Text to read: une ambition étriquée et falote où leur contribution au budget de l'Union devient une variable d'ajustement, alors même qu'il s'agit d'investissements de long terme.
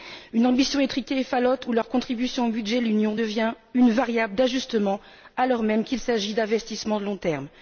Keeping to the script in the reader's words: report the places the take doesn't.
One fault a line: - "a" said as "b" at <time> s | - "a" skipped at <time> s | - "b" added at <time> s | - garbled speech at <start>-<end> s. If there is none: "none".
none